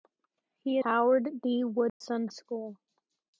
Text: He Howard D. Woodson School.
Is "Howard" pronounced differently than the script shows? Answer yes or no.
no